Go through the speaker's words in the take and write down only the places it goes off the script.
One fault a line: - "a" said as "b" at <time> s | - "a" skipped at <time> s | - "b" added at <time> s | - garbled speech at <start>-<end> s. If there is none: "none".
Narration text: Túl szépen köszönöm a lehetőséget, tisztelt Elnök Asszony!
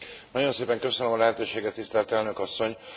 - "Túl" said as "Nagyon" at 0.3 s